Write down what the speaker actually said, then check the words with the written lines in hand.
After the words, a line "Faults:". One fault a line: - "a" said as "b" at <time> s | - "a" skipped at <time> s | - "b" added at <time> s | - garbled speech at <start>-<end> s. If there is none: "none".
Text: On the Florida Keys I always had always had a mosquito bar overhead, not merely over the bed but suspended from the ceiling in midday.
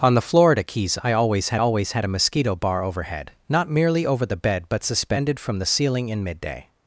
On the Florida Keys I always had always had a mosquito bar overhead, not merely over the bed but suspended from the ceiling in midday.
Faults:
none